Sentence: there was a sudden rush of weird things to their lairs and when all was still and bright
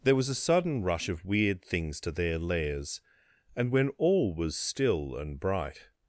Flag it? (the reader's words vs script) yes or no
no